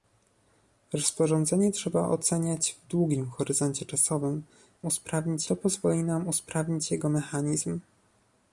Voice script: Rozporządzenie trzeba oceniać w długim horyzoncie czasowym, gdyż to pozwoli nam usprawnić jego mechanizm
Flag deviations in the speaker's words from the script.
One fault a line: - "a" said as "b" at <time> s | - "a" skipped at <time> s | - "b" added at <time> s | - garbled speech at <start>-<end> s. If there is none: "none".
- "gdyż" said as "usprawnić" at 4.9 s